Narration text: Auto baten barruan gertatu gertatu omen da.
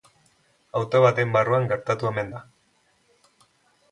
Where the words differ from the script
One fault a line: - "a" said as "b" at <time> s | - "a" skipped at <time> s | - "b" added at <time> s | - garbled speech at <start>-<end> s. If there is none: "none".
- "gertatu" skipped at 2.1 s